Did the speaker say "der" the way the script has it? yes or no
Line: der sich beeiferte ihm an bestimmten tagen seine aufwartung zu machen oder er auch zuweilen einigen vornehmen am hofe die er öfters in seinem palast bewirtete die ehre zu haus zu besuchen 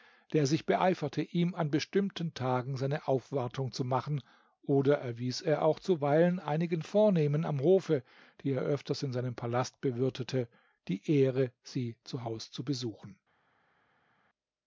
yes